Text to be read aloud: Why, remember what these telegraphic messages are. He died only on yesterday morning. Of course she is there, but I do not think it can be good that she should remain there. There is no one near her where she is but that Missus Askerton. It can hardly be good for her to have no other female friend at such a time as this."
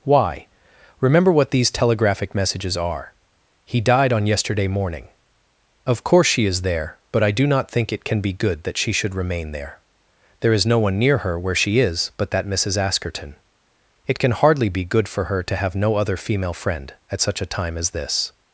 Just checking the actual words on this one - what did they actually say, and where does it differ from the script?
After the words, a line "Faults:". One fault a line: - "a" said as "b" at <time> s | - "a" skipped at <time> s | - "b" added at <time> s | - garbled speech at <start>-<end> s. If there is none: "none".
Why, remember what these telegraphic messages are. He died on yesterday morning. Of course she is there, but I do not think it can be good that she should remain there. There is no one near her where she is but that Missus Askerton. It can hardly be good for her to have no other female friend at such a time as this."
Faults:
- "only" skipped at 4.1 s